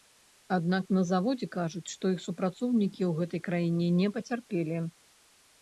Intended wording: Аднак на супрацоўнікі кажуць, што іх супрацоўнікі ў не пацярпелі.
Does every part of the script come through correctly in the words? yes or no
no